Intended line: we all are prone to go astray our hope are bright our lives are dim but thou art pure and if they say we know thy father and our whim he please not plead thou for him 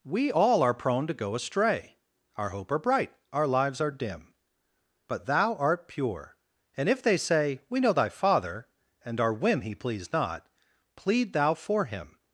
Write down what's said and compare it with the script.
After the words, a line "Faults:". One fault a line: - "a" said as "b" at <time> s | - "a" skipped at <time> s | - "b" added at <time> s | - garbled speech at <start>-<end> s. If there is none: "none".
we all are prone to go astray our hope are bright our lives are dim but thou art pure and if they say we know thy father and our whim he please not plead thou for him
Faults:
none